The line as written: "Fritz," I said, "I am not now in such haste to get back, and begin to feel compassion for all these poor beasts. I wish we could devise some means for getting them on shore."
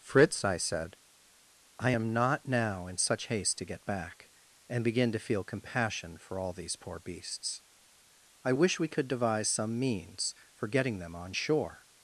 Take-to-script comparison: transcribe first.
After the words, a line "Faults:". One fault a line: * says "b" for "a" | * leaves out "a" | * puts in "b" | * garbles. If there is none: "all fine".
"Fritz," I said, "I am not now in such haste to get back, and begin to feel compassion for all these poor beasts. I wish we could devise some means for getting them on shore."
Faults:
all fine